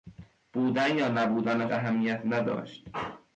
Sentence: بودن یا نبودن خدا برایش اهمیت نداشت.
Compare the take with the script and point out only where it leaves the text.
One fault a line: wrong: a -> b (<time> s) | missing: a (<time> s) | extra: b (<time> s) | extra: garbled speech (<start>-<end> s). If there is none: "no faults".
missing: خدا برایش (1.7 s)